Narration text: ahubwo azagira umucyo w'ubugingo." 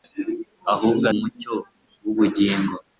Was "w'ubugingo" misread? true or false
false